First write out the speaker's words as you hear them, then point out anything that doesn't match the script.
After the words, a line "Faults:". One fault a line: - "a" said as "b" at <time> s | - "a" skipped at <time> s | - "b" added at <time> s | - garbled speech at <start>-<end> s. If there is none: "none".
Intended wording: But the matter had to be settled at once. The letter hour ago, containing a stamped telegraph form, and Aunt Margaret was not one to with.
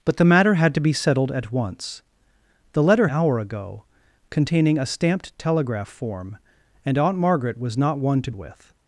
But the matter had to be settled at once. The letter hour ago, containing a stamped telegraph form, and Aunt Margaret was not one to with.
Faults:
none